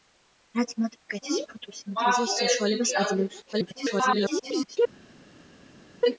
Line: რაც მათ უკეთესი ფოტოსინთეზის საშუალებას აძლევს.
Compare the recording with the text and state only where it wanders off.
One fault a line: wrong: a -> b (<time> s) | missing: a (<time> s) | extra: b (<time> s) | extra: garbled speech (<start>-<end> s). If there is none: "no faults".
extra: garbled speech (3.5-4.8 s)